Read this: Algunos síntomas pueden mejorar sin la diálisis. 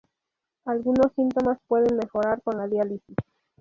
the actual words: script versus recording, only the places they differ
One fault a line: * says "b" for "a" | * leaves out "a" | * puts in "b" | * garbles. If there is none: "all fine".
* says "con" for "sin"